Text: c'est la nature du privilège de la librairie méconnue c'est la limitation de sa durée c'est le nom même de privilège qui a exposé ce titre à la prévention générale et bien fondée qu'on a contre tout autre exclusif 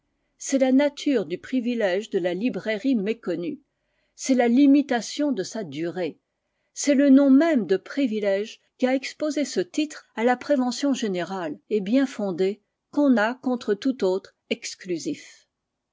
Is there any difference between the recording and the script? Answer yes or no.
no